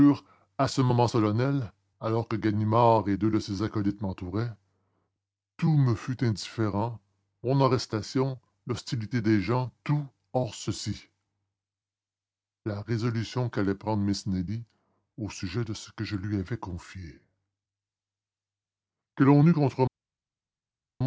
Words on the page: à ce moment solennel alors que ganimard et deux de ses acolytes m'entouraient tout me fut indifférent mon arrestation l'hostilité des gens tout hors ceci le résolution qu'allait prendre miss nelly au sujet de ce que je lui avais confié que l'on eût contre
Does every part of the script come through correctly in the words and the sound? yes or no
no